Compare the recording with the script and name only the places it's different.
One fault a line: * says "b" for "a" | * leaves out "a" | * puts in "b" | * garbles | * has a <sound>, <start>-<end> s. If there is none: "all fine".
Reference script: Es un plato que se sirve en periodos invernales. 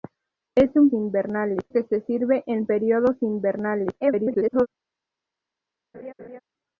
* says "invernales" for "plato"
* garbles
* has a laugh, 5.9-6.4 s